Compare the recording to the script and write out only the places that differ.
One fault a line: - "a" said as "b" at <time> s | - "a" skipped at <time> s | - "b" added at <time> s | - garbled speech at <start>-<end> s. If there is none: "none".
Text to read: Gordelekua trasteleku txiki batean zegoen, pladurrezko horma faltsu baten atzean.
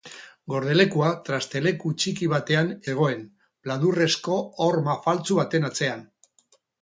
none